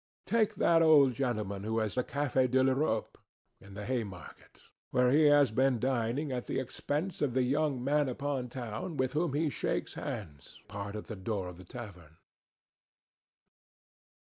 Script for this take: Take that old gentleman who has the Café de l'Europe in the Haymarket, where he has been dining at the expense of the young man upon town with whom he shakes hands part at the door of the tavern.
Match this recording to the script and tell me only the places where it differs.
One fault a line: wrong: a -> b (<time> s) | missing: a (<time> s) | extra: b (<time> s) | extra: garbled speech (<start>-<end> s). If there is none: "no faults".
no faults